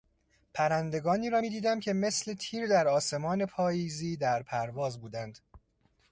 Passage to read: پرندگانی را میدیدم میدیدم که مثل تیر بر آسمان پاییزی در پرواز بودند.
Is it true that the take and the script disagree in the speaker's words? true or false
true